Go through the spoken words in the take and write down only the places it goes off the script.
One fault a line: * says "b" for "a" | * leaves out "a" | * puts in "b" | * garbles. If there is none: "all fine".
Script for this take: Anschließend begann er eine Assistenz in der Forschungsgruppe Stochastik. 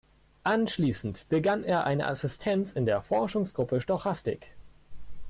all fine